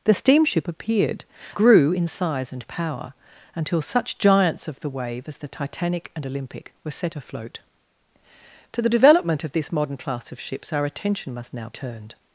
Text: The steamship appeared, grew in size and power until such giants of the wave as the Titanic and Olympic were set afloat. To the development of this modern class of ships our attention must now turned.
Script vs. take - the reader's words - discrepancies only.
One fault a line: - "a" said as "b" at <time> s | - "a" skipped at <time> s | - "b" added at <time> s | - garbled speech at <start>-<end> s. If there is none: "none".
none